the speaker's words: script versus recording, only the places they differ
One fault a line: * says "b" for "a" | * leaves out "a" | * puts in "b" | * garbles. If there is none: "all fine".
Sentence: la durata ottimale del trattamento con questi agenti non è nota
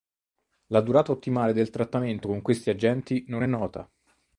all fine